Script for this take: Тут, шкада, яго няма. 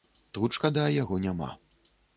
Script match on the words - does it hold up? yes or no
yes